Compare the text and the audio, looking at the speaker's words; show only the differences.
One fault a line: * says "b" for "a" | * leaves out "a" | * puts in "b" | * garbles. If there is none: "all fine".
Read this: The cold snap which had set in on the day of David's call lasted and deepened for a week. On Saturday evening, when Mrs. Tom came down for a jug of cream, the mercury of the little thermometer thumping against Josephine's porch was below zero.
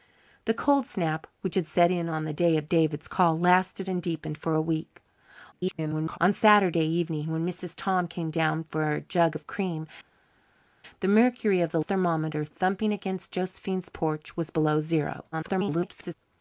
* garbles
* leaves out "little"
* garbles